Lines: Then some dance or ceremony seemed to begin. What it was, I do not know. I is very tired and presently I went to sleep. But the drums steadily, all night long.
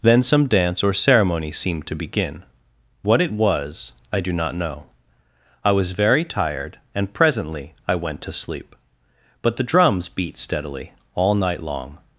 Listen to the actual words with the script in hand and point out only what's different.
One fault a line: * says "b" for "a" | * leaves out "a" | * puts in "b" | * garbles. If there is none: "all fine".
* says "was" for "is"
* puts in "beat"